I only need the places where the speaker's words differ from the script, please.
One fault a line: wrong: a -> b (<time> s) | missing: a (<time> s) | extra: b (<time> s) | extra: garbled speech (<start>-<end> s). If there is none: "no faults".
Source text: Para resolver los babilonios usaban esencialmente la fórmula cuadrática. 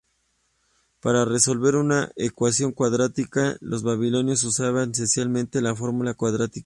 extra: una ecuación cuadrática (1.8 s)